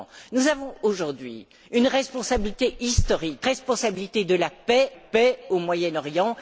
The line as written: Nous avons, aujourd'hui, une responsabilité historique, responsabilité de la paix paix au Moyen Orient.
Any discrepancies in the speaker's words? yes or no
no